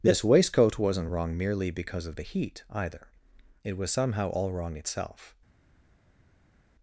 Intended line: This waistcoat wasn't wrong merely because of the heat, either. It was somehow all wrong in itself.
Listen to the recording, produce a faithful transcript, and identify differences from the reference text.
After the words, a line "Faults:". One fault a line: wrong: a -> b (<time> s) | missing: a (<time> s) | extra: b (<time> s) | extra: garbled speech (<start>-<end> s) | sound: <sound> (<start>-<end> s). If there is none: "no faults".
This waistcoat wasn't wrong merely because of the heat, either. It was somehow all wrong itself.
Faults:
missing: in (4.8 s)